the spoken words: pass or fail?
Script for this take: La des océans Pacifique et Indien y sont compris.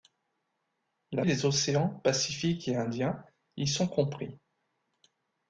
pass